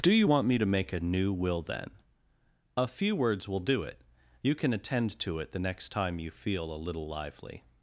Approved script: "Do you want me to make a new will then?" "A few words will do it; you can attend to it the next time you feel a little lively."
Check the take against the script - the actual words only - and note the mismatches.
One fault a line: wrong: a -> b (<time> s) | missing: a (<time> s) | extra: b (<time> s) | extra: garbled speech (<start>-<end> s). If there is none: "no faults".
no faults